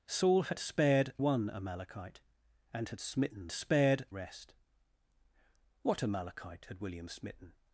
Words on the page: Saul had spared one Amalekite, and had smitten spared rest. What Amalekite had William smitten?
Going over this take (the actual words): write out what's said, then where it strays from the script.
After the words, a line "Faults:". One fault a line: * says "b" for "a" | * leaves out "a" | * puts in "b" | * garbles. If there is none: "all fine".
Saul had spared one Amalekite, and had smitten spared rest. What Amalekite had William smitten?
Faults:
all fine